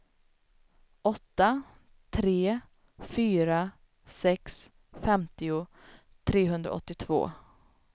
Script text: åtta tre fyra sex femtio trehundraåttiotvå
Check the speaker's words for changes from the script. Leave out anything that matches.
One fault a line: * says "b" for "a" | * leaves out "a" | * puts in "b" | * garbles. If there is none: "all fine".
all fine